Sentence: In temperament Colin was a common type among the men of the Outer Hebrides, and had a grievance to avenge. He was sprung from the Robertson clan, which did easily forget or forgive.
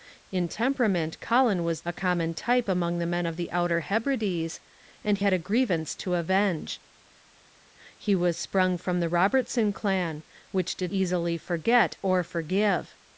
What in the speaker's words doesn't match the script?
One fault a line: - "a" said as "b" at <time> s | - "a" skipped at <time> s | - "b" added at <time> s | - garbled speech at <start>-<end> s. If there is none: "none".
none